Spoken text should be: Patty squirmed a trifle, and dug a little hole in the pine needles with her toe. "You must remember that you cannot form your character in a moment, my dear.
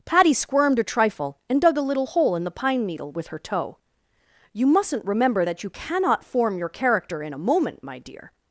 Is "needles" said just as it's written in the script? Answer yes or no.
no